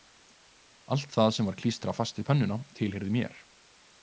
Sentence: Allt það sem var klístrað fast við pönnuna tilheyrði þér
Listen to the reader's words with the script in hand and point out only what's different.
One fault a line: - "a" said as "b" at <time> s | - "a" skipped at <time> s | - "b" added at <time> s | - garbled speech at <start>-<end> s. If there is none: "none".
- "þér" said as "mér" at 3.2 s